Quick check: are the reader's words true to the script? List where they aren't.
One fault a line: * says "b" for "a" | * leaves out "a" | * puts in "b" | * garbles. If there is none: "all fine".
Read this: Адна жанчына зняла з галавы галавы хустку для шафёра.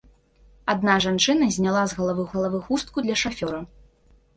all fine